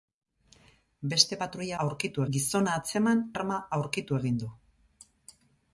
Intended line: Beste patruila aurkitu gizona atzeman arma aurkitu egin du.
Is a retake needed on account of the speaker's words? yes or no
no